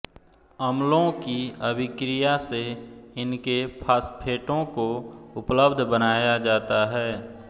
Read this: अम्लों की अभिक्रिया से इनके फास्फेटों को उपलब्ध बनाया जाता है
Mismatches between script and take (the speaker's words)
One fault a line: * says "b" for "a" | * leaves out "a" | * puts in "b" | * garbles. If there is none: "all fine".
all fine